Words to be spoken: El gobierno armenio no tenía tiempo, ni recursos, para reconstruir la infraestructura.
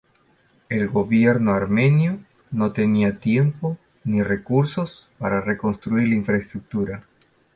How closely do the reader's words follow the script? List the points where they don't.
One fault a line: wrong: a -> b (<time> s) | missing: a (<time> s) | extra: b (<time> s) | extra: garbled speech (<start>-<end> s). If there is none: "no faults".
no faults